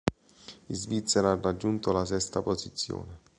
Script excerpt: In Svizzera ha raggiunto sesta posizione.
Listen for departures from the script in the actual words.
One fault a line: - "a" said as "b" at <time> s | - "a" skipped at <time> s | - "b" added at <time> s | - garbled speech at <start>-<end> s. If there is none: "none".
- "la" added at 1.9 s